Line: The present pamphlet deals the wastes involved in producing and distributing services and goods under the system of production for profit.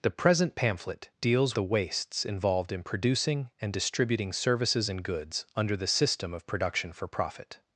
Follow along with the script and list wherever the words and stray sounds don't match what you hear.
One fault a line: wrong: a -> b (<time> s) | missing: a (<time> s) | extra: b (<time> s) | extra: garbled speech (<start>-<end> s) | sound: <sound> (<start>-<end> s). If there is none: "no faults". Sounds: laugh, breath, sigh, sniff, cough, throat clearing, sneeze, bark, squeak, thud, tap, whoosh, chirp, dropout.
no faults